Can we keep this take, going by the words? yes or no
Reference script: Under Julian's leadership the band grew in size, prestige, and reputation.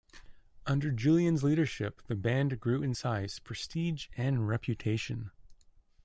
yes